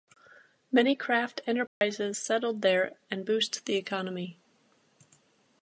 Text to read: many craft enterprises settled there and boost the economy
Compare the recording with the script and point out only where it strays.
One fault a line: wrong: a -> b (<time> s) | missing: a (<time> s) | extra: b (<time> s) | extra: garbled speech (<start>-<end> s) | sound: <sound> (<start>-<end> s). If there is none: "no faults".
sound: dropout (1.7-1.8 s)